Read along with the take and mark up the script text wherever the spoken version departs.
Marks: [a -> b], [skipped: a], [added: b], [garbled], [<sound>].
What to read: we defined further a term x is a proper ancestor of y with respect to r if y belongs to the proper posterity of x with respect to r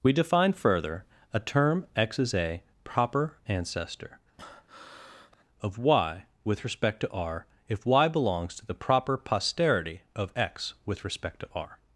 we [defined -> define] further a term x is a proper ancestor [breath] of y with respect to r if y belongs to the proper posterity of x with respect to r